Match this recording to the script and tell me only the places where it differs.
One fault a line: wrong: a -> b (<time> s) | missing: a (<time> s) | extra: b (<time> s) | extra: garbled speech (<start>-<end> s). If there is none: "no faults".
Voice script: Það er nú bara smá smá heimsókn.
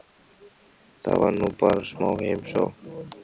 wrong: er -> var (1.2 s)
missing: smá (2.1 s)